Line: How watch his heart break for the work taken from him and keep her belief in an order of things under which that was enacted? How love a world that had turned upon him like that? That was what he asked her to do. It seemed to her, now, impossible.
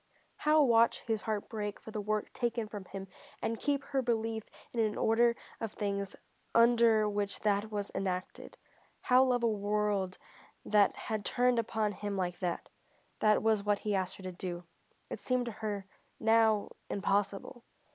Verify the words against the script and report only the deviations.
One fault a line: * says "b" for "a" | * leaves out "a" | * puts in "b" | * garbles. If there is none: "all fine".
all fine